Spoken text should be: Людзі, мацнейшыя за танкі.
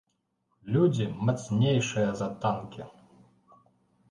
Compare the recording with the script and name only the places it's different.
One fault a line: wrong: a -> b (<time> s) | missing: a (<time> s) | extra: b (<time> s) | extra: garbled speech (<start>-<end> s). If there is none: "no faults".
no faults